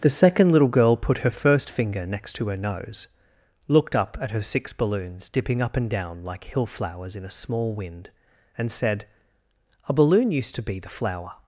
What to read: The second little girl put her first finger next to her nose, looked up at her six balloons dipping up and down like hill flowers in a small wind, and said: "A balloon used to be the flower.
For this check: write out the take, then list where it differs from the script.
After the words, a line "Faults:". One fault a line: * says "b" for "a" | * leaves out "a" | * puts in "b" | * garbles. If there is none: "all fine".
The second little girl put her first finger next to her nose, looked up at her six balloons dipping up and down like hill flowers in a small wind, and said: "A balloon used to be the flower.
Faults:
all fine